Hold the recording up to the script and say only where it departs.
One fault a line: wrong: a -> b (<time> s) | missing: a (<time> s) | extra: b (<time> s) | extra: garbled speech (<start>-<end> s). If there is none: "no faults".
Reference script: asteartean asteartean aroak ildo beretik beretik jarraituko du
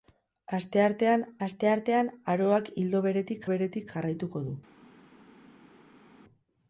no faults